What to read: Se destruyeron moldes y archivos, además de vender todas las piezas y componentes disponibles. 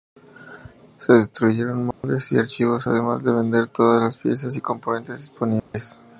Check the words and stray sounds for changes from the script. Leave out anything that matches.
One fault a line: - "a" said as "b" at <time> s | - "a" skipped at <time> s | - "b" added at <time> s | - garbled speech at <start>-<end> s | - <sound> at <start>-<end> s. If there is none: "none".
- dropout at 1.9-2.0 s
- dropout at 5.6-5.7 s